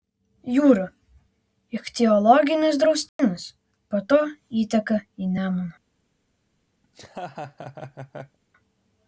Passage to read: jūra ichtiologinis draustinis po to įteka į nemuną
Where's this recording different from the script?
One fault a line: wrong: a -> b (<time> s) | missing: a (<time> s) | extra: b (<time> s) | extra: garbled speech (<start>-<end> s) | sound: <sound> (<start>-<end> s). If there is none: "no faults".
sound: dropout (3.1-3.2 s)
sound: laugh (6.8-8.4 s)